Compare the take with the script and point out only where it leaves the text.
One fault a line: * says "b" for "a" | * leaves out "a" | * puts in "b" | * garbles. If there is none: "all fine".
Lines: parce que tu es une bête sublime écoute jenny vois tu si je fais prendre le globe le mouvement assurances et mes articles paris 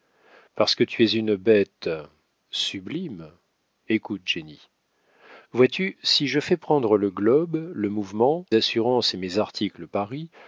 all fine